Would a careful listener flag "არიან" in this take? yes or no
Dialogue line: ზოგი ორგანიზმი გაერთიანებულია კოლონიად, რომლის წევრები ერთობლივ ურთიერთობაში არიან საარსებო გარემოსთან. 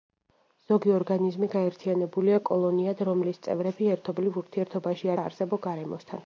yes